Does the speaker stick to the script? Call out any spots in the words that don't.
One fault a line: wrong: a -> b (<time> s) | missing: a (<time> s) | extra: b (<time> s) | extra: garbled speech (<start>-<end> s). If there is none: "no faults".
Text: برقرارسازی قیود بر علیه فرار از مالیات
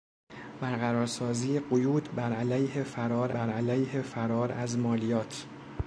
extra: بر علیه فرار (3.3 s)